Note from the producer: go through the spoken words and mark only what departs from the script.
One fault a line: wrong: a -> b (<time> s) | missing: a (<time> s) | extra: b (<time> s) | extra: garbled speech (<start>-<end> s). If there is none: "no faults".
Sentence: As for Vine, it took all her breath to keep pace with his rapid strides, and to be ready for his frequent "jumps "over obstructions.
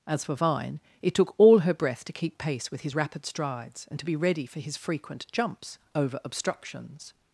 no faults